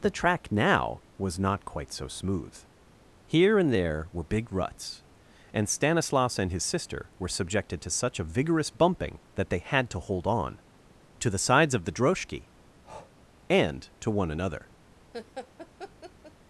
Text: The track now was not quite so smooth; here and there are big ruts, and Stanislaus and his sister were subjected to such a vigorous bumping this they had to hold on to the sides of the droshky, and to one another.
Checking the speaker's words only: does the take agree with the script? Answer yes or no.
no